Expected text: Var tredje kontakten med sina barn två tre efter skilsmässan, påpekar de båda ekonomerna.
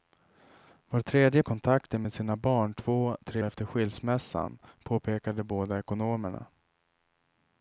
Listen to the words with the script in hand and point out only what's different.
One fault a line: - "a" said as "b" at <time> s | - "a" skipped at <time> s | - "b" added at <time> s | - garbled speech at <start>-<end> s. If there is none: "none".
none